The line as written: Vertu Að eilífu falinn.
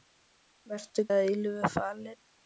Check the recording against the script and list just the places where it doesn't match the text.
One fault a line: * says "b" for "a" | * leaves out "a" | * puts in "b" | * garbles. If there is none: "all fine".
all fine